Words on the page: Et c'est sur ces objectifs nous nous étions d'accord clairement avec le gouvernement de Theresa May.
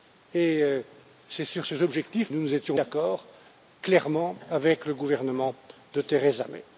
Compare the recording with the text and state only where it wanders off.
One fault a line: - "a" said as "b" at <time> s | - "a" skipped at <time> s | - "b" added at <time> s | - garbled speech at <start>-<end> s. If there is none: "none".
none